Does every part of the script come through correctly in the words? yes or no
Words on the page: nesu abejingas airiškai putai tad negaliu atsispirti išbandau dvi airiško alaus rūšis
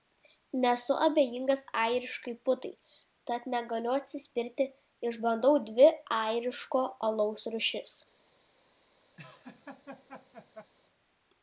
yes